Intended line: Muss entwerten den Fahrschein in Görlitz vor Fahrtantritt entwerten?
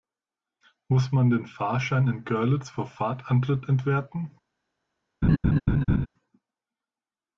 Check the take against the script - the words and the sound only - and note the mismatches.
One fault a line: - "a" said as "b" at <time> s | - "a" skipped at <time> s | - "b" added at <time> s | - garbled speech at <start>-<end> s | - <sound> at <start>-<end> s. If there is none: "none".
- "entwerten" said as "man" at 1.1 s
- laugh at 5.2-6.1 s